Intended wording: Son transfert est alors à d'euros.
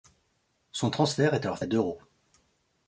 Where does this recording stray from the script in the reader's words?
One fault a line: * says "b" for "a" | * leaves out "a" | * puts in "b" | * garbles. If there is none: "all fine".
all fine